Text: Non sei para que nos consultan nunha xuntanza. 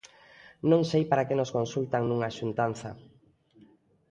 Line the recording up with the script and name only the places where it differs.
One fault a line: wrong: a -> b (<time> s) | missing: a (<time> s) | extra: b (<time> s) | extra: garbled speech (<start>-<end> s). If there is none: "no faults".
no faults